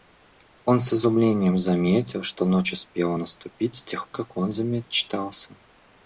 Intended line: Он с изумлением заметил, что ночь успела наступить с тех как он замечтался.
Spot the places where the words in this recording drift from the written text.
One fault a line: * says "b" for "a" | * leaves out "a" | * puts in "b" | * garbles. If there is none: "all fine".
all fine